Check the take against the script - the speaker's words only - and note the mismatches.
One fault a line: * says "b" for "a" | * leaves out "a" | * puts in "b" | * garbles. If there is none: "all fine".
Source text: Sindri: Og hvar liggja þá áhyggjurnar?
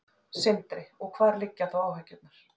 all fine